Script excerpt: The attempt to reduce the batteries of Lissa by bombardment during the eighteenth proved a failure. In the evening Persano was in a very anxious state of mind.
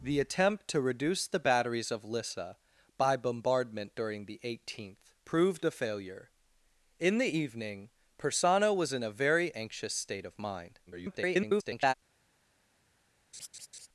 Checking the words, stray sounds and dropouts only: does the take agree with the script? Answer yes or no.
no